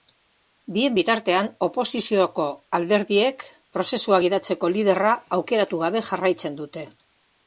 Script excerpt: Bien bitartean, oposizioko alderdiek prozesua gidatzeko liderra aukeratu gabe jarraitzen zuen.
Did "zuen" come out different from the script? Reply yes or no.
yes